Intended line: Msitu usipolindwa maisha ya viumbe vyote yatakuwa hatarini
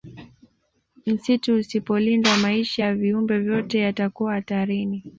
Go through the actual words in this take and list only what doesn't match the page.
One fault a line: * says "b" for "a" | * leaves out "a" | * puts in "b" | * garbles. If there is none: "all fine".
all fine